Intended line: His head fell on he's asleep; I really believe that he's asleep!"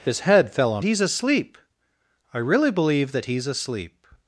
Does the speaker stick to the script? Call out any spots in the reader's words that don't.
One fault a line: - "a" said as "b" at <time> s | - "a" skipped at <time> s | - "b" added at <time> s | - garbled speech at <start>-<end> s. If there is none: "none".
none